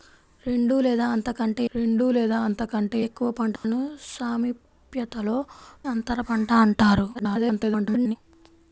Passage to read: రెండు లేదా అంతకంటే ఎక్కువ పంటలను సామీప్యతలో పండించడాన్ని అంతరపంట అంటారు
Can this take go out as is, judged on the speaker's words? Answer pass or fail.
fail